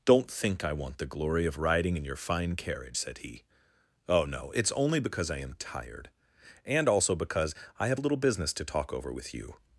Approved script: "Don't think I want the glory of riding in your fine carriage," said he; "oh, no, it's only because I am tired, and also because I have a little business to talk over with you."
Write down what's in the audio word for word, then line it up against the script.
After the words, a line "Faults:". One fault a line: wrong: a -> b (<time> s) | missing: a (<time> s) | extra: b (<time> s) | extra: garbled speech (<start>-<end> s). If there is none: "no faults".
"Don't think I want the glory of riding in your fine carriage," said he; "oh, no, it's only because I am tired, and also because I have a little business to talk over with you."
Faults:
no faults